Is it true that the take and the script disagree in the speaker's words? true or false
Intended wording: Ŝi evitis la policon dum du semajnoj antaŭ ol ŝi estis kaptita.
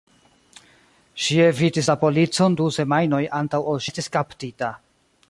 true